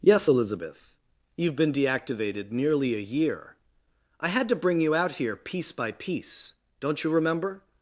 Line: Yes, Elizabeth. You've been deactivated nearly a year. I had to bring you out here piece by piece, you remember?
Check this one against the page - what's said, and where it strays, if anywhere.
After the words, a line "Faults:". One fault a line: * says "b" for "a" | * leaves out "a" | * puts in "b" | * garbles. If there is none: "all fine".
Yes, Elizabeth. You've been deactivated nearly a year. I had to bring you out here piece by piece, don't you remember?
Faults:
* puts in "don't"